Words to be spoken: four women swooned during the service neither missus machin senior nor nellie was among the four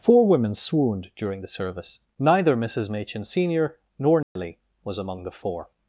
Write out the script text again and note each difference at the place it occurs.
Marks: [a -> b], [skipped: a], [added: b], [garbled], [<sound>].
four women swooned during the service neither missus machin senior nor nellie [dropout] was among the four